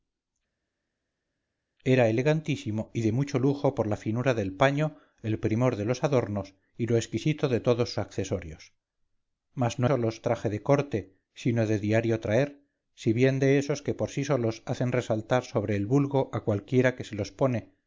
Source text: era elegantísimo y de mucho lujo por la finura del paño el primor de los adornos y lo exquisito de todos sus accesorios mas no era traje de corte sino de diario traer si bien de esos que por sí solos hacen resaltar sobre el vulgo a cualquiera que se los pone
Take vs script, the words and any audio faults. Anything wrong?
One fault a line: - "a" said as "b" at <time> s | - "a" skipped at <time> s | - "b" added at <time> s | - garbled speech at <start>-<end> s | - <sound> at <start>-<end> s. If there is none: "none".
- "sus" skipped at 7.9 s
- "era" said as "solos" at 9.8 s